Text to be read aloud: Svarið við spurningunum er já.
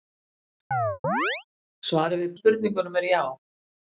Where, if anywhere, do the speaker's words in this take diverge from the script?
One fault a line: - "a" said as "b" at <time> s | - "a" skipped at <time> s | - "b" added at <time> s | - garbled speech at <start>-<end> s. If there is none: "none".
none